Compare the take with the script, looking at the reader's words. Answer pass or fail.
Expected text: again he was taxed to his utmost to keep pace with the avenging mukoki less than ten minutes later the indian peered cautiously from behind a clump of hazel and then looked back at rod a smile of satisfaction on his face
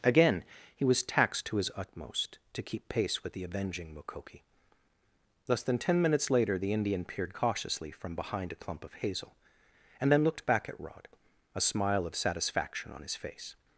pass